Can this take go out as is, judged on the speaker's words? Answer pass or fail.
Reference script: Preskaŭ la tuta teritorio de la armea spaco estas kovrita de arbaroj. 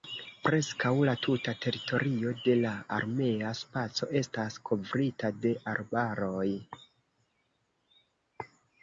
pass